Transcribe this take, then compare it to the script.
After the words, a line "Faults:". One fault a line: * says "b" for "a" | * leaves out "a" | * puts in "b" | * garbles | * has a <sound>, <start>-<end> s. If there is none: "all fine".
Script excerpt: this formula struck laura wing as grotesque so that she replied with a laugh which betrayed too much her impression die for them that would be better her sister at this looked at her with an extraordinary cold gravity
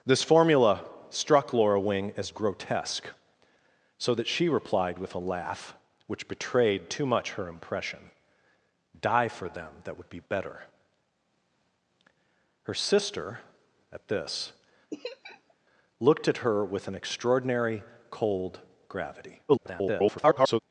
this formula struck laura wing as grotesque so that she replied with a laugh which betrayed too much her impression die for them that would be better her sister at this looked at her with an extraordinary cold gravity [garbled]
Faults:
* has a laugh, 14.9-15.5 s
* garbles